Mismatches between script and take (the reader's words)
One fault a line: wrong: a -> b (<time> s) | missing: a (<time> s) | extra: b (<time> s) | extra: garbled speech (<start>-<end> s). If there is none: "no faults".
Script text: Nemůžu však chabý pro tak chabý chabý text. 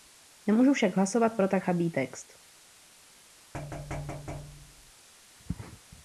wrong: chabý -> hlasovat (0.9 s)
missing: chabý (1.9 s)